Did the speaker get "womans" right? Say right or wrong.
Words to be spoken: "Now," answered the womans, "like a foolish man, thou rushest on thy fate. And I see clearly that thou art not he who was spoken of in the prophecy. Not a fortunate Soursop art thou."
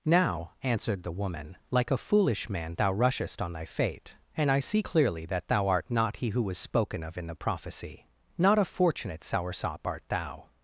wrong